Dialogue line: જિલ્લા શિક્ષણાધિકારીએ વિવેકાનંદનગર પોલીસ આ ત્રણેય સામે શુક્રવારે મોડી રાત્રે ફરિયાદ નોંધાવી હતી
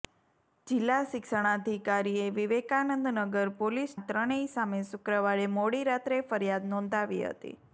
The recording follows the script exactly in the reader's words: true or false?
true